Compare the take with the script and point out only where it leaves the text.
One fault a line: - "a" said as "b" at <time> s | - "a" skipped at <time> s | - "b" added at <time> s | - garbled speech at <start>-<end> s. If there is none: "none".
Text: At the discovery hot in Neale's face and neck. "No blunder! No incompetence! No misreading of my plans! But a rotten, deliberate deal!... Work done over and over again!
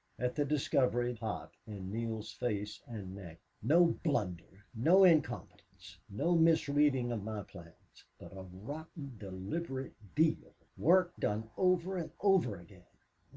none